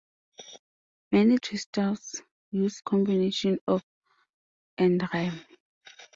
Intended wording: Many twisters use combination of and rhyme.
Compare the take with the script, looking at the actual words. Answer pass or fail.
pass